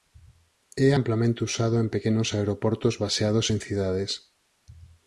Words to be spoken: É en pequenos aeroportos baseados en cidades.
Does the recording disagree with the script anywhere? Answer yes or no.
yes